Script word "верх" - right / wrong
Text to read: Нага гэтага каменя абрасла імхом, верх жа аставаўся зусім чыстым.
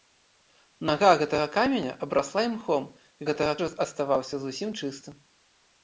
wrong